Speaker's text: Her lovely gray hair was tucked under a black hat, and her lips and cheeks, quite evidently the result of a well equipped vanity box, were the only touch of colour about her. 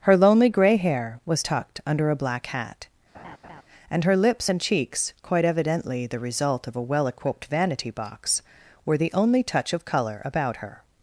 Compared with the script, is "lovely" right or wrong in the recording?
wrong